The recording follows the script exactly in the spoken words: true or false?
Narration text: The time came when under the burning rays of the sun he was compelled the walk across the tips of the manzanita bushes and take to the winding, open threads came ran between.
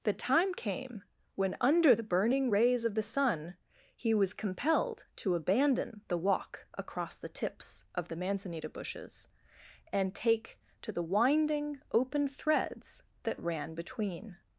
false